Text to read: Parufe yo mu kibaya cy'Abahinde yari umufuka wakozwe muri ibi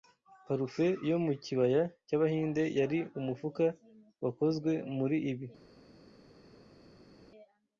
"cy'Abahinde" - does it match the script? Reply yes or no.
yes